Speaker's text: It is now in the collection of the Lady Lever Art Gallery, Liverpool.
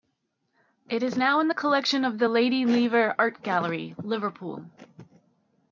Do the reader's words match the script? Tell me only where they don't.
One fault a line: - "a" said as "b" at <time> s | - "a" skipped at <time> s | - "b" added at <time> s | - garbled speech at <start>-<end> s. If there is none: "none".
none